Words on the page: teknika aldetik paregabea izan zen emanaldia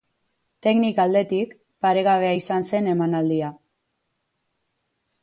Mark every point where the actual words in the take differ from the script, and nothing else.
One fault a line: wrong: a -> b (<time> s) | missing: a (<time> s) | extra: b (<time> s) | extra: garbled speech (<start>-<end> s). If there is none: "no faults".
no faults